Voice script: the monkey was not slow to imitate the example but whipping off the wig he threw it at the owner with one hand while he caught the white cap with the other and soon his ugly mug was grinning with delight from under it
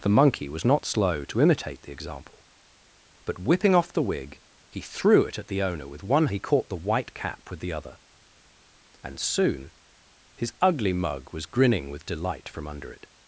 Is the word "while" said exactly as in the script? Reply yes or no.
no